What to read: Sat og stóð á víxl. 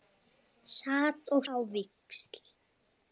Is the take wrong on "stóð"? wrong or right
wrong